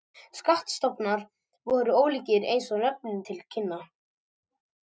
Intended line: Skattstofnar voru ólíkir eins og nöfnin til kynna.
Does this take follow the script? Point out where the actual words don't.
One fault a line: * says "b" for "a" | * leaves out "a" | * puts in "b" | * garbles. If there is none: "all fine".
all fine